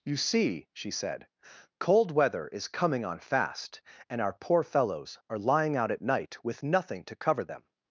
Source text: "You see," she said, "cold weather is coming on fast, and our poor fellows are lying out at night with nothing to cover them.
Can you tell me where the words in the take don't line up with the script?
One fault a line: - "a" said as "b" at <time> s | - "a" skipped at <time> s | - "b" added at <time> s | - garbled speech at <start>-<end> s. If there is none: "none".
none